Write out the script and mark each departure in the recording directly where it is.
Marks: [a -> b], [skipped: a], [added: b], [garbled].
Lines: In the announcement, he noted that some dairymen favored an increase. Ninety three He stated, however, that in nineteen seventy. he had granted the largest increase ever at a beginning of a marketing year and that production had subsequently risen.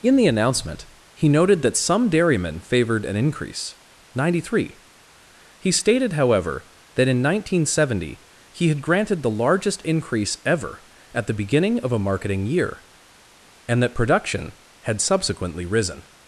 In the announcement, he noted that some dairymen favored an increase. Ninety three He stated, however, that in nineteen seventy. he had granted the largest increase ever at [a -> the] beginning of a marketing year and that production had subsequently risen.